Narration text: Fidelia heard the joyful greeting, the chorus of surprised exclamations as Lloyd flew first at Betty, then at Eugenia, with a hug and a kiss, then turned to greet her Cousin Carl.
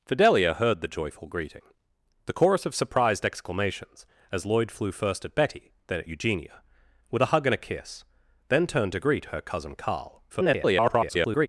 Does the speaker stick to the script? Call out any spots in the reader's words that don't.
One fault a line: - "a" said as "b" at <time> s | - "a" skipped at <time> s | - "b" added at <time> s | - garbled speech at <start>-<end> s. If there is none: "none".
- garbled speech at 10.3-11.5 s